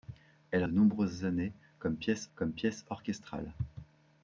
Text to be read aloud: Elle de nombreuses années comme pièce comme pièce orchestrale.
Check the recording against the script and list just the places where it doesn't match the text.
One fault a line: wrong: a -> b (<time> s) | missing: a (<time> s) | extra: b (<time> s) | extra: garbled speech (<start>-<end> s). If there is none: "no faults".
no faults